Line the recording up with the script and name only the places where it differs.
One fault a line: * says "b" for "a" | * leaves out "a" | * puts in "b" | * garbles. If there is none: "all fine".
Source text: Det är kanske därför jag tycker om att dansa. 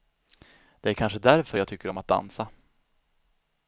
all fine